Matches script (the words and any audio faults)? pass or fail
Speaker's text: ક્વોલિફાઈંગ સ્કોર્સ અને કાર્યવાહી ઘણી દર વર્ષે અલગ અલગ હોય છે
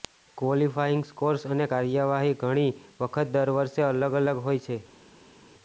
fail